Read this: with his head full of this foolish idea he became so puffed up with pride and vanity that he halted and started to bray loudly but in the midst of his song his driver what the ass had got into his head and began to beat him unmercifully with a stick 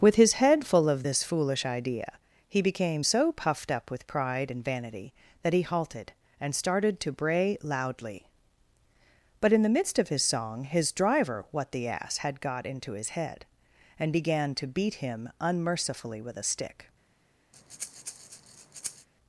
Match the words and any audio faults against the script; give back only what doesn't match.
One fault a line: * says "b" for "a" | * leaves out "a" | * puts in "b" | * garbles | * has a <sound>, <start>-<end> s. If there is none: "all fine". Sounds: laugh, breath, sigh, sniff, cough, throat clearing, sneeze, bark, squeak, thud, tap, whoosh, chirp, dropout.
* has a breath, 17.5-19.1 s